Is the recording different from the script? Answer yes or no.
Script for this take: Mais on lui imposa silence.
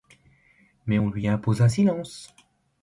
no